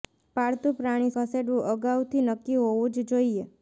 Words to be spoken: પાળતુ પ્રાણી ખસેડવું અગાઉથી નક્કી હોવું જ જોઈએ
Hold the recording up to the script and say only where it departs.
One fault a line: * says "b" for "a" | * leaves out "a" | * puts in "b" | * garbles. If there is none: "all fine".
all fine